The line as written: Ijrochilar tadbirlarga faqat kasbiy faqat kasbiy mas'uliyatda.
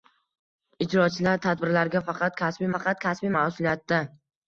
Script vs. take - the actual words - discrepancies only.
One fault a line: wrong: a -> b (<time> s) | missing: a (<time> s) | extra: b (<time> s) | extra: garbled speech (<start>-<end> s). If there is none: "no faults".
no faults